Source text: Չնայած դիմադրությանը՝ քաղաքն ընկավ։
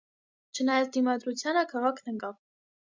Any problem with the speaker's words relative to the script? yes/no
no